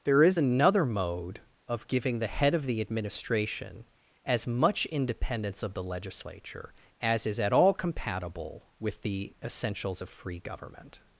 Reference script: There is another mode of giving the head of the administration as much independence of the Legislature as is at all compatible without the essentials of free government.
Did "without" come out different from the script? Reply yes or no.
yes